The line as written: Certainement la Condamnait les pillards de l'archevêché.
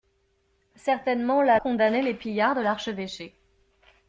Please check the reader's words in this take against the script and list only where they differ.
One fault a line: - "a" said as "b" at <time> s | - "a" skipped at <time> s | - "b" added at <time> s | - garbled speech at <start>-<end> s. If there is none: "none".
none